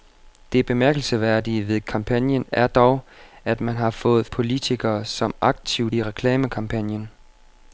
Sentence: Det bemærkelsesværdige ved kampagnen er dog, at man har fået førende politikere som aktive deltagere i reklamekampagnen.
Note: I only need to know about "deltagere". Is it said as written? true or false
false